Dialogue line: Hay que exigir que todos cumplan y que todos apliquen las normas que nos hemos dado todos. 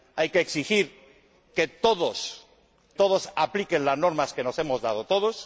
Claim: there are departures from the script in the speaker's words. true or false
true